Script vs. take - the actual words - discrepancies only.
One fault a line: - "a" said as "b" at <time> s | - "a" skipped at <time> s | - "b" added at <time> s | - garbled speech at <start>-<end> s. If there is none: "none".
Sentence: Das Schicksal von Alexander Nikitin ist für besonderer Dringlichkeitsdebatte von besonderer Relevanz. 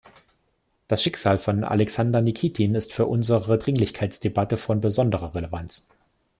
- "besonderer" said as "unsere" at 3.1 s